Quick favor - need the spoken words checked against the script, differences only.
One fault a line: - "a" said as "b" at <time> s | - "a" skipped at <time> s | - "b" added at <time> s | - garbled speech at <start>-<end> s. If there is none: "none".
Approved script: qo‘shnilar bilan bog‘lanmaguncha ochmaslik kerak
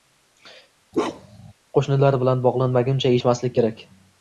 none